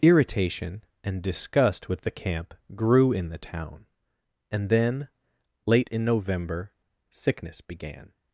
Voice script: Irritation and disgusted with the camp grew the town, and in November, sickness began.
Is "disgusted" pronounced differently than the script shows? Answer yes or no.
yes